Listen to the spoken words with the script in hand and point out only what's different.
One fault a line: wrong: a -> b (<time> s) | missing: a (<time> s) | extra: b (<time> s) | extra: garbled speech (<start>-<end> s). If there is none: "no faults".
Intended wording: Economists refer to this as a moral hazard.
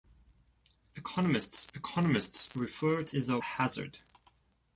extra: economists (1.7 s)
missing: this (3.2 s)
missing: moral (3.4 s)